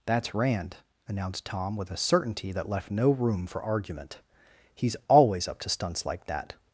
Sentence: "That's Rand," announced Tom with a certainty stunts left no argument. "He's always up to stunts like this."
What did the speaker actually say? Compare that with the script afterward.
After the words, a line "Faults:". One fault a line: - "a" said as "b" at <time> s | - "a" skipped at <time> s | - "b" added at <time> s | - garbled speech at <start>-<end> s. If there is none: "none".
"That's Rand," announced Tom with a certainty that left no room for argument. "He's always up to stunts like that."
Faults:
- "stunts" said as "that" at 2.5 s
- "room for" added at 3.1 s
- "this" said as "that" at 6.3 s